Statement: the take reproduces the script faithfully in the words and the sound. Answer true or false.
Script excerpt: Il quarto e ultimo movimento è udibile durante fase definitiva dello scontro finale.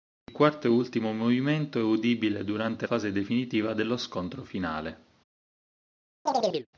false